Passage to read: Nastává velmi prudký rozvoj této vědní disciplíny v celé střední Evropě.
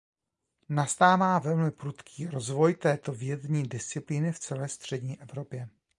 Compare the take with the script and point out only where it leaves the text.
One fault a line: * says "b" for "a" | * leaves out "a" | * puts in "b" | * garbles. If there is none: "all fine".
all fine